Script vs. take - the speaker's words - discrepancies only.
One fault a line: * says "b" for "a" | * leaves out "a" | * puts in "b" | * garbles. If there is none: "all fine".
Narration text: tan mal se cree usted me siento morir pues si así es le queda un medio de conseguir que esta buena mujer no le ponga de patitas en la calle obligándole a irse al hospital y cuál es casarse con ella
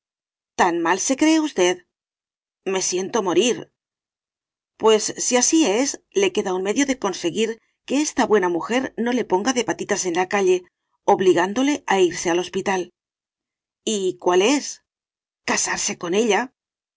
all fine